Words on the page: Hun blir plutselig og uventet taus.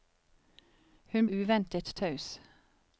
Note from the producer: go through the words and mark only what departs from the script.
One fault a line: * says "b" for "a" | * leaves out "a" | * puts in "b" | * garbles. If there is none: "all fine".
* leaves out "blir plutselig og"